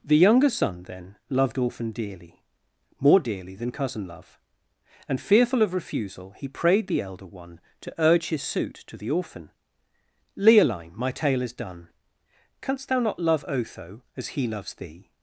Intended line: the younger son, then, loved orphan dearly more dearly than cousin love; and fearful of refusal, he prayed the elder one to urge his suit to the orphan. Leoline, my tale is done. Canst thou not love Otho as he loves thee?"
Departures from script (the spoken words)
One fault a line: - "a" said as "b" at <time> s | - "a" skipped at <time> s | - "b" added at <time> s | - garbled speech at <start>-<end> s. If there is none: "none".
none